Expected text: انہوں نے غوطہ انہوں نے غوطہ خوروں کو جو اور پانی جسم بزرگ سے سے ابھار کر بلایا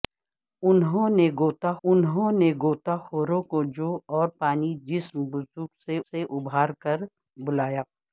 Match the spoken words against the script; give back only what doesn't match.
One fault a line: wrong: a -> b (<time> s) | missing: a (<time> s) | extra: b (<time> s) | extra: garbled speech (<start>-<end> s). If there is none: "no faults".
no faults